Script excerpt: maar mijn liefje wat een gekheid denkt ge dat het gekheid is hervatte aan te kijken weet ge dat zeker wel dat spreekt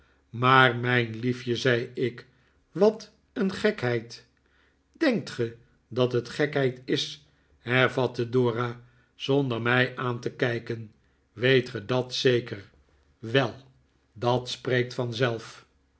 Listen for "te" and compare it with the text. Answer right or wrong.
right